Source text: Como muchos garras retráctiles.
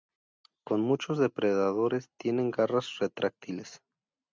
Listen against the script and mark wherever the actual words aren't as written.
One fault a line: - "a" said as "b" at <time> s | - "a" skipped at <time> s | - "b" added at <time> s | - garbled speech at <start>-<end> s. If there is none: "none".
- "depredadores tienen" added at 1.2 s